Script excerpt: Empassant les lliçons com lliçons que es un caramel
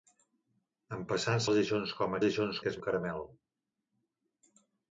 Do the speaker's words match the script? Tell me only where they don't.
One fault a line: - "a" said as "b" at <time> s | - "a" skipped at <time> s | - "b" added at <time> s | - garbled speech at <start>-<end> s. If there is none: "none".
none